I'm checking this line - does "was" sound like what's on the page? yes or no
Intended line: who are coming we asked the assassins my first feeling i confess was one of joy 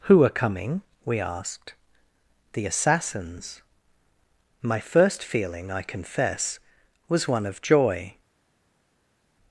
yes